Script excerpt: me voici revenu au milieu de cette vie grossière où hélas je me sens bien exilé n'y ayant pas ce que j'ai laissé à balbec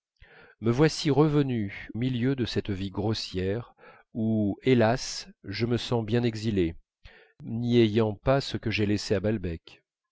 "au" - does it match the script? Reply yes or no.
no